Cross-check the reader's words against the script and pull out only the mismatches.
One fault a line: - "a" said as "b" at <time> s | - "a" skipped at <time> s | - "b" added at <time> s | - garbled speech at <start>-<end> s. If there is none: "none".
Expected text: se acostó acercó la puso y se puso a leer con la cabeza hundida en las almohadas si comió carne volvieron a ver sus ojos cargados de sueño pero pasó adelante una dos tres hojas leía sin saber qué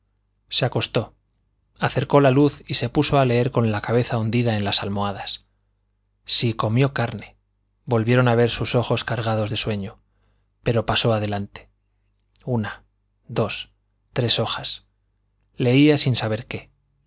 - "puso" said as "luz" at 2.3 s